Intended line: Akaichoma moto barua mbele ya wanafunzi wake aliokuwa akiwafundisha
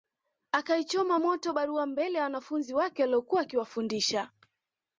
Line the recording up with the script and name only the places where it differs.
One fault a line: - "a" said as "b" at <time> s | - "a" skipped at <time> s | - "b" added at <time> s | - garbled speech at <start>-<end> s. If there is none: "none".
none